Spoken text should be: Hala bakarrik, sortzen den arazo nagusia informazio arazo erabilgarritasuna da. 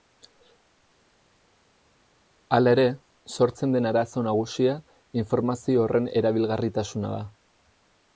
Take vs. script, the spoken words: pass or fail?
fail